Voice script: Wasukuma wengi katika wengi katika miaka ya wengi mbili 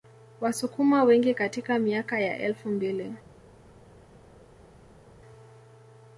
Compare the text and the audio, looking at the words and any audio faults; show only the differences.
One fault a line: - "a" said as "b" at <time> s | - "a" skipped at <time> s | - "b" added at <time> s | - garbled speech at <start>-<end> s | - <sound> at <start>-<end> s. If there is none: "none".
- "wengi katika" skipped at 1.8 s
- "wengi" said as "elfu" at 2.4 s